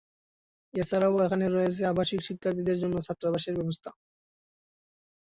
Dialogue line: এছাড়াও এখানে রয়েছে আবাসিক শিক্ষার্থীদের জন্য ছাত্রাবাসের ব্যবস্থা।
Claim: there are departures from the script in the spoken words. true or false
false